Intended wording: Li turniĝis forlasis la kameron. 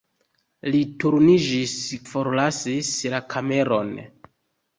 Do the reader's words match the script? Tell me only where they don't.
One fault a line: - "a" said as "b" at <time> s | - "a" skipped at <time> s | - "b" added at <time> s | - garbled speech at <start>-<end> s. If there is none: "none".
none